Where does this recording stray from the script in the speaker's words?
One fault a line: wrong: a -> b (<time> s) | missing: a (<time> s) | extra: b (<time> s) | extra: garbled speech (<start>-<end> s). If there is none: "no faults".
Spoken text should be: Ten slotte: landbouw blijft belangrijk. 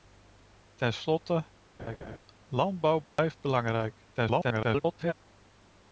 extra: garbled speech (4.1-5.1 s)